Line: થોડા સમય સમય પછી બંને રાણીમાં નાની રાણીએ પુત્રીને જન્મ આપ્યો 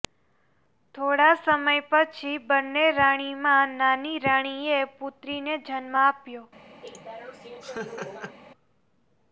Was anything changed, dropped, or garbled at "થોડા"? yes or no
no